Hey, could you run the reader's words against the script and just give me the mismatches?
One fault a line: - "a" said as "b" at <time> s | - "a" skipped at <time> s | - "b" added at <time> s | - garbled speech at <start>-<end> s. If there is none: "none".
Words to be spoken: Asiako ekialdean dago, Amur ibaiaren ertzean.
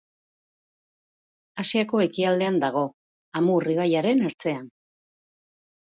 none